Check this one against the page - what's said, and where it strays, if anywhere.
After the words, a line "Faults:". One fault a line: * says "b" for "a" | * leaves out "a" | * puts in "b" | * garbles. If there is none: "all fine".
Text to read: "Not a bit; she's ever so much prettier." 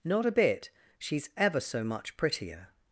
"Not a bit; she's ever so much prettier."
Faults:
all fine